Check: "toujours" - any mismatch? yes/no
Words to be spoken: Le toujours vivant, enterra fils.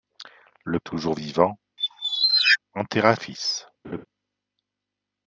no